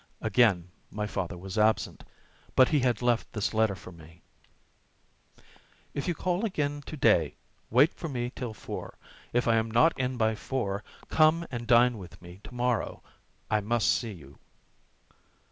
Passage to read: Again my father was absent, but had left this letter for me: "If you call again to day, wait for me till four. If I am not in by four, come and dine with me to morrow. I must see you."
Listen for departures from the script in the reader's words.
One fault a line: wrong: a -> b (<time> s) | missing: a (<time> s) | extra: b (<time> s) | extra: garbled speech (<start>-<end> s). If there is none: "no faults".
extra: he (2.7 s)